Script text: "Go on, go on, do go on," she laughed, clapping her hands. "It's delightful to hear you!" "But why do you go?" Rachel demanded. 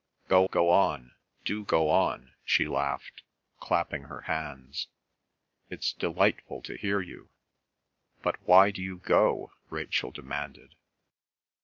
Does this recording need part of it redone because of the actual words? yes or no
yes